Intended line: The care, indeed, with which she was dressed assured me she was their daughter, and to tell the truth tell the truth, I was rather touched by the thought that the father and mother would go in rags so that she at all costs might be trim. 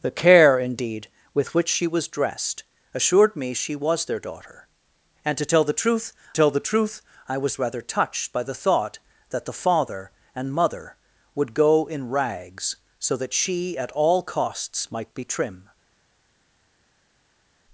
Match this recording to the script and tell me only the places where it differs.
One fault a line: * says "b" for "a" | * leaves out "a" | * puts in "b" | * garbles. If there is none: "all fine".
all fine